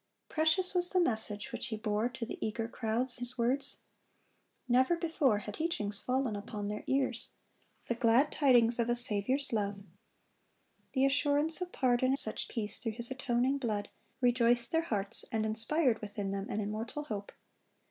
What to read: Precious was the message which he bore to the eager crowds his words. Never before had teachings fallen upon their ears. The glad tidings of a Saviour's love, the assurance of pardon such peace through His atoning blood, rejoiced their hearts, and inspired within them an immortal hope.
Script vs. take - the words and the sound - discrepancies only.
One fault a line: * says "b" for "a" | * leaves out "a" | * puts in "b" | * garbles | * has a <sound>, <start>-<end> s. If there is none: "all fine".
all fine